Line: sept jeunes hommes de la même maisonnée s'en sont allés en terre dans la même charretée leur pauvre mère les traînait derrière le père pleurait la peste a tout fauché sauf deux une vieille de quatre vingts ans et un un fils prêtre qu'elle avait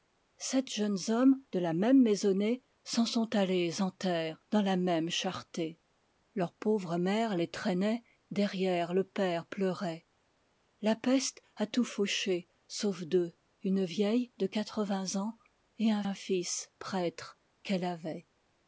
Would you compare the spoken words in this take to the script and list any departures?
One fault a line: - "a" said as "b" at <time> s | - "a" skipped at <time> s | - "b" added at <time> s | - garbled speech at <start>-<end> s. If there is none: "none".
none